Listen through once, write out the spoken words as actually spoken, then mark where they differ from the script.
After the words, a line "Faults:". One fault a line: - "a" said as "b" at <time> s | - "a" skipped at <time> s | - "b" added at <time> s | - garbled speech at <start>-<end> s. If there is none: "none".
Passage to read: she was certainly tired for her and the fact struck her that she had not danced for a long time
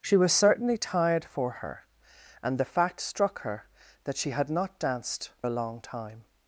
she was certainly tired for her and the fact struck her that she had not danced a long time
Faults:
- "for" skipped at 5.3 s